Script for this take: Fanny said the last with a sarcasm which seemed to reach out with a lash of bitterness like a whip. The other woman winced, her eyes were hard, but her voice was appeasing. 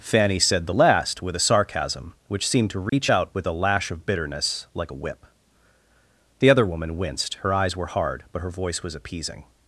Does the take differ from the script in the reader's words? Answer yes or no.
no